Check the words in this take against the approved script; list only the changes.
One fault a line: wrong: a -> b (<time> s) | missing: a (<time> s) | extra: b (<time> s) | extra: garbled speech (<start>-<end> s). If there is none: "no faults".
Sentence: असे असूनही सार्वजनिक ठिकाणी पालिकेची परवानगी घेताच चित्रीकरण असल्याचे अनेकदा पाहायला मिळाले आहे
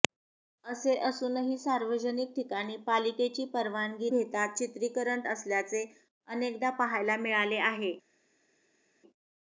no faults